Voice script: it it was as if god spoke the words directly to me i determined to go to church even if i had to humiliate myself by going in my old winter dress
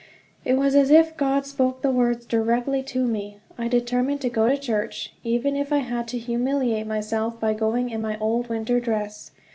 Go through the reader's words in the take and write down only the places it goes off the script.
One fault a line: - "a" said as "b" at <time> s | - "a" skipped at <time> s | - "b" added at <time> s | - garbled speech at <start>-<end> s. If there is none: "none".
- "it" skipped at 0.6 s